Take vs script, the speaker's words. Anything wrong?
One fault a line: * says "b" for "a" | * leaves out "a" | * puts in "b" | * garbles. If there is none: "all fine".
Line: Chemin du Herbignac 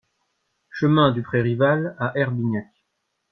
* puts in "Pré Rival à"